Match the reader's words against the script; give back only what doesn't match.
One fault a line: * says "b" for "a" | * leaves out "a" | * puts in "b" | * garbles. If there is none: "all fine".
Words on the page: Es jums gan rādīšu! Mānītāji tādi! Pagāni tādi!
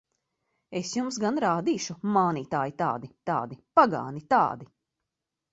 * puts in "tādi"